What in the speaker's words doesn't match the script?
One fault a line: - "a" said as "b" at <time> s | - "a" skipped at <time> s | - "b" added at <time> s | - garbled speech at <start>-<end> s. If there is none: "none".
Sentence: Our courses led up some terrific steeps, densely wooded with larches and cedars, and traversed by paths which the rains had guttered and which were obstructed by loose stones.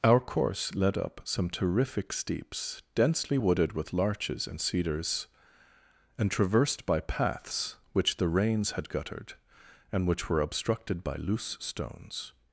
- "courses" said as "course" at 0.2 s